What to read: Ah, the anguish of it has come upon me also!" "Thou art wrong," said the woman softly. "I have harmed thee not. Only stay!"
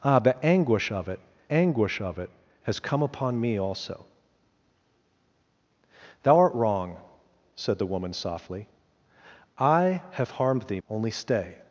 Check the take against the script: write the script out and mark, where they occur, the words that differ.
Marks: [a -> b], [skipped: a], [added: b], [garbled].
Ah, the anguish of it [added: anguish of it] has come upon me also!" "Thou art wrong," said the woman softly. "I have harmed thee [skipped: not.] Only stay!"